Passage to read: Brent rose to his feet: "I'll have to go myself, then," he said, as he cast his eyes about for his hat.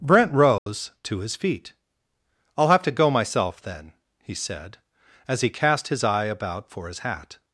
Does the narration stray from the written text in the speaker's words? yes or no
yes